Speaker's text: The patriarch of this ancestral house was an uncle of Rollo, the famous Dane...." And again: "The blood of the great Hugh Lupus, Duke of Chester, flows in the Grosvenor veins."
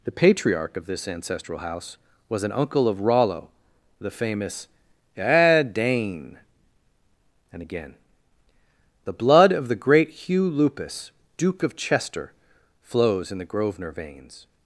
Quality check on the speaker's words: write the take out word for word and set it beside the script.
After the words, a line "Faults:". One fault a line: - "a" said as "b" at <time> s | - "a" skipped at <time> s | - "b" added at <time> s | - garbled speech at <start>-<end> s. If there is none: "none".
The patriarch of this ancestral house was an uncle of Rollo, the famous Dane...." And again: "The blood of the great Hugh Lupus, Duke of Chester, flows in the Grosvenor veins."
Faults:
none